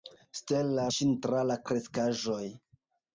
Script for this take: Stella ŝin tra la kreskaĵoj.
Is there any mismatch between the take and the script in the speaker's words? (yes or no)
no